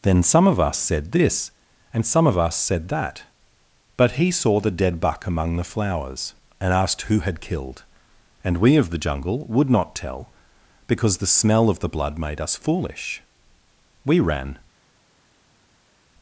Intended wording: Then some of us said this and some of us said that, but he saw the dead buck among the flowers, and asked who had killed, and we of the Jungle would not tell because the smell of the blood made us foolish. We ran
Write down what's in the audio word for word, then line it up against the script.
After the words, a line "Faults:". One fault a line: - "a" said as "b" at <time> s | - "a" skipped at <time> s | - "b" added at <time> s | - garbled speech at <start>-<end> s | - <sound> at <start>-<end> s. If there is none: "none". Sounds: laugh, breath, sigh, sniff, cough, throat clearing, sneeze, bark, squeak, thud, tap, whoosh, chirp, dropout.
Then some of us said this and some of us said that, but he saw the dead buck among the flowers, and asked who had killed, and we of the Jungle would not tell because the smell of the blood made us foolish. We ran
Faults:
none